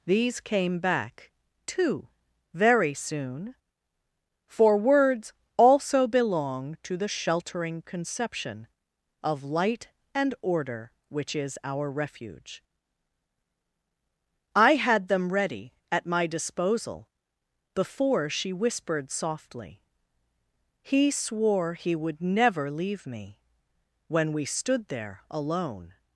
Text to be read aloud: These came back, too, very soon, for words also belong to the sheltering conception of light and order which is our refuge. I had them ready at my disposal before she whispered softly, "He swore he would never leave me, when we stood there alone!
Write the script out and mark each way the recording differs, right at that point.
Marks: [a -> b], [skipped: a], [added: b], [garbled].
These came back, too, very soon, for words also belong to the sheltering conception of light and order which is our refuge. I had them ready at my disposal before she whispered softly, "He swore he would never leave me, when we stood there alone!